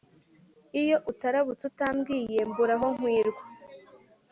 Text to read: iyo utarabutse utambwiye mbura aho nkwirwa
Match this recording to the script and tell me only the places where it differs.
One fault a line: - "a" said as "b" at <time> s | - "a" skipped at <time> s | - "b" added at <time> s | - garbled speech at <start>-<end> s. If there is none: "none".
none